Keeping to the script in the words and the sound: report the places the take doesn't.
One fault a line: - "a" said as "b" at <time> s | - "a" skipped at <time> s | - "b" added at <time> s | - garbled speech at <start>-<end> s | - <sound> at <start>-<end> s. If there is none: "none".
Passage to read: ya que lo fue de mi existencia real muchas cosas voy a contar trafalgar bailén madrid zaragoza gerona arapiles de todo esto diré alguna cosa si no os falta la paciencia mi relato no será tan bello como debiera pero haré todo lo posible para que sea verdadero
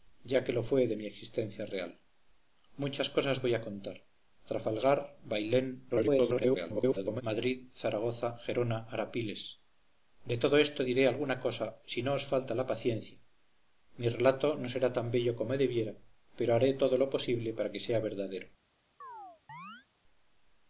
- garbled speech at 5.9-7.2 s
- chirp at 19.0-19.9 s